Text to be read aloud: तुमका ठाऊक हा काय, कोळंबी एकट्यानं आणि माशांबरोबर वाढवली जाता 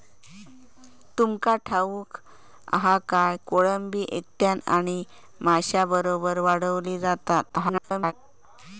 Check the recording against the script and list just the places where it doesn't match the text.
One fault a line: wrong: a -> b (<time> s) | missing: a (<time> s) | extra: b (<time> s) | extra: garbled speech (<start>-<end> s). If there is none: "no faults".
extra: garbled speech (7.5-8.1 s)